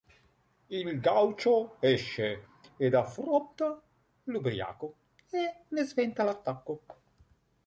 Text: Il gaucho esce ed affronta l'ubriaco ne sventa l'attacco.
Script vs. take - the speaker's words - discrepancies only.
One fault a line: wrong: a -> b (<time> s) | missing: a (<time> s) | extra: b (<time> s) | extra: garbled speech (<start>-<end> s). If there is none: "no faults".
extra: e (5.3 s)